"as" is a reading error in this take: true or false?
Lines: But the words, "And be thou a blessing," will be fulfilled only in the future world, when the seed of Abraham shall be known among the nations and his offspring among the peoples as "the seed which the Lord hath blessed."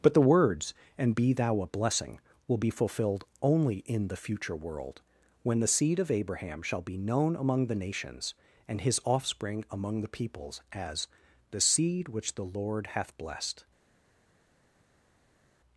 false